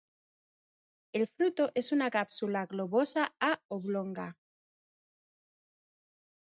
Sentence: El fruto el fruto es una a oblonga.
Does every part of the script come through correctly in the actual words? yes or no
no